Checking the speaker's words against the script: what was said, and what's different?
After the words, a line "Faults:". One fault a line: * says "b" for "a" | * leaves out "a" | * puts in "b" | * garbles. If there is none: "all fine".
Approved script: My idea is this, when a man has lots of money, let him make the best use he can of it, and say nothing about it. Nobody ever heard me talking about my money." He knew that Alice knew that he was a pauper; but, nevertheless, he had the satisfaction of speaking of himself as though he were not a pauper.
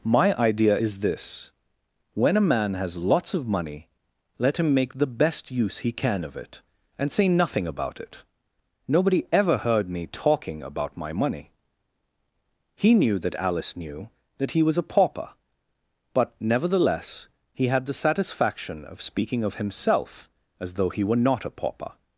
My idea is this, when a man has lots of money, let him make the best use he can of it, and say nothing about it. Nobody ever heard me talking about my money." He knew that Alice knew that he was a pauper; but, nevertheless, he had the satisfaction of speaking of himself as though he were not a pauper.
Faults:
all fine